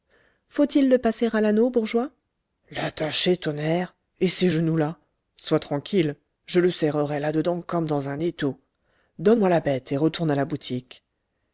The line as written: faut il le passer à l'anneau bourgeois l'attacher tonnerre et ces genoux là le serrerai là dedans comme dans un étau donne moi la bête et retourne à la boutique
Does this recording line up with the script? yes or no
no